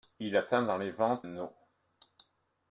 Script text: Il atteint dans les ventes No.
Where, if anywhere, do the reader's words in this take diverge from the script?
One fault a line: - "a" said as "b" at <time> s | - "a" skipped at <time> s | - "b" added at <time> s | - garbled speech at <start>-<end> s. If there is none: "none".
none